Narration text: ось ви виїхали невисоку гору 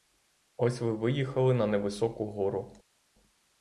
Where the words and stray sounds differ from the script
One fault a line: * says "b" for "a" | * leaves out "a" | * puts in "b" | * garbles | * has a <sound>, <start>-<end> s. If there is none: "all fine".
* puts in "на"